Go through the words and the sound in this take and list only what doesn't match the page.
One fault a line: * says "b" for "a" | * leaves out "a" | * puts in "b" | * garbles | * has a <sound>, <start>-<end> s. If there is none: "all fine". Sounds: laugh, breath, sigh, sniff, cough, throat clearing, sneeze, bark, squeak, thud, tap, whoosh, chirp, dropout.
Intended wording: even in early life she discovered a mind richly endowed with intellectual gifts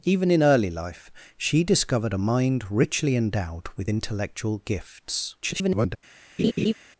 * garbles
* has a laugh, 6.4-6.7 s